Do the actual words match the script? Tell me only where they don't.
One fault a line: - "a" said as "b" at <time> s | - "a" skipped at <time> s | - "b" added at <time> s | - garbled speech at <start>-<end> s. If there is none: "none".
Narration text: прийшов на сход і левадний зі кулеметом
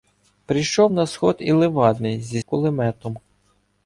none